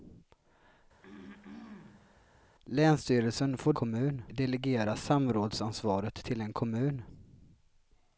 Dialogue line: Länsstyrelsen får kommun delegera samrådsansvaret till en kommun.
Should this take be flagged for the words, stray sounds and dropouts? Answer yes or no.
yes